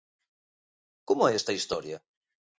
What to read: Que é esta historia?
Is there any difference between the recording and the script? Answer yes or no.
yes